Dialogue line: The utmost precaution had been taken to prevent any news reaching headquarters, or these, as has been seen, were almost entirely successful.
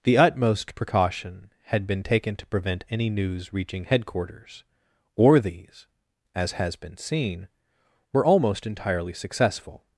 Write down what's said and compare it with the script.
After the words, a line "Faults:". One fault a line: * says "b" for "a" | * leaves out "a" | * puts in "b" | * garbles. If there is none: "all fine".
The utmost precaution had been taken to prevent any news reaching headquarters, or these, as has been seen, were almost entirely successful.
Faults:
all fine